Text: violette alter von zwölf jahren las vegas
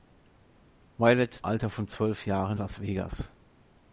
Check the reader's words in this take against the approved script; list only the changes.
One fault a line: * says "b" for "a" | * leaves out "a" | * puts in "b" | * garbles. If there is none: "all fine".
all fine